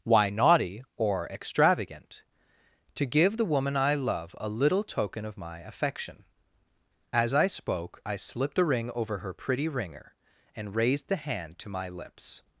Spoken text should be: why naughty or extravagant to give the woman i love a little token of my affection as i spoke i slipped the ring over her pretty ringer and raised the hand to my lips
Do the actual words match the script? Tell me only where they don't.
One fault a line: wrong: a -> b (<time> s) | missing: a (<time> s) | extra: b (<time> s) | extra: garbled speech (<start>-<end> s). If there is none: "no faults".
wrong: the -> a (8.6 s)